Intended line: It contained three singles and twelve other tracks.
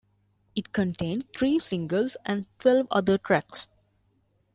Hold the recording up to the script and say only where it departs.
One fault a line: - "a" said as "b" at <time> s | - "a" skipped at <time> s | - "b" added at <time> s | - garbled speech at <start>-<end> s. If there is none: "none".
none